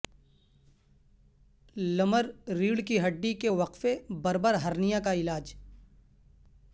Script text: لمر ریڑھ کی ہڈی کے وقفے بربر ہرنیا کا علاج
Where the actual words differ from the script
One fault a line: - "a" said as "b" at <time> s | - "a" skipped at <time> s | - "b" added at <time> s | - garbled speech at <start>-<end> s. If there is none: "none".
none